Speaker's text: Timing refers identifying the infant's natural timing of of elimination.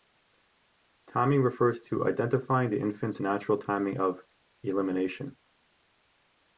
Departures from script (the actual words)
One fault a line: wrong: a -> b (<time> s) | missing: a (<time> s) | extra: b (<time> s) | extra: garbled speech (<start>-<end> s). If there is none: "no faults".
extra: to (1.8 s)
missing: of (4.2 s)